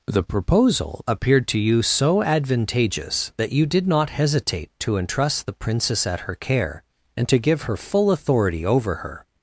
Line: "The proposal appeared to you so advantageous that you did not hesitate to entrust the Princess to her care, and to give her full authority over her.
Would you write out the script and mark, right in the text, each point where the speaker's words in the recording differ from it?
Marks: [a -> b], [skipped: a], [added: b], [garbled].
"The proposal appeared to you so advantageous that you did not hesitate to entrust the Princess [to -> at] her care, and to give her full authority over her.